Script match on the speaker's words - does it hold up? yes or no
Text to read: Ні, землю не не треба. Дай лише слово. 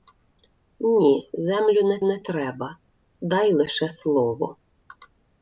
yes